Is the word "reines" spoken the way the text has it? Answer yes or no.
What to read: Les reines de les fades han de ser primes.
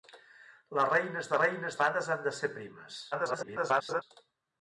yes